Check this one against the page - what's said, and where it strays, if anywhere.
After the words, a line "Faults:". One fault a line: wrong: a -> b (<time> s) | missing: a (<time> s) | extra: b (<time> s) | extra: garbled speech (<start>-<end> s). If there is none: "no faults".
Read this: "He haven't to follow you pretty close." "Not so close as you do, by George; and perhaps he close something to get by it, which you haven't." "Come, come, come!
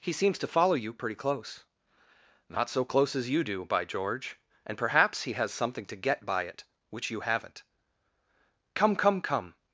"He seems to follow you pretty close." "Not so close as you do, by George; and perhaps he has something to get by it, which you haven't." "Come, come, come!
Faults:
wrong: haven't -> seems (0.1 s)
wrong: close -> has (5.3 s)